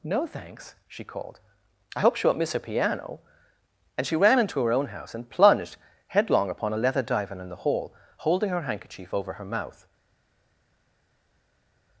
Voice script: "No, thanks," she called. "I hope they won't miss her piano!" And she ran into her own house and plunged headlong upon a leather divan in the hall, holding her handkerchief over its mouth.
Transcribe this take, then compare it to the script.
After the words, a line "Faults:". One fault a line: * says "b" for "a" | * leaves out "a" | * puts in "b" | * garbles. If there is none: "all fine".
"No, thanks," she called. "I hope she won't miss her piano!" And she ran into her own house and plunged headlong upon a leather divan in the hall, holding her handkerchief over her mouth.
Faults:
* says "she" for "they"
* says "her" for "its"